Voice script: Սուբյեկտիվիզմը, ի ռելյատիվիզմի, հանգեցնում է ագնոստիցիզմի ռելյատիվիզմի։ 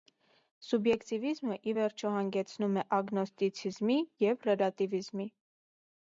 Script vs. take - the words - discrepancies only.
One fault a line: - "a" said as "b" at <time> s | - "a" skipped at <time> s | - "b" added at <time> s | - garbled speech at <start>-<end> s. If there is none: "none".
- "ռելյատիվիզմի" said as "վերջո" at 1.8 s
- "և" added at 4.3 s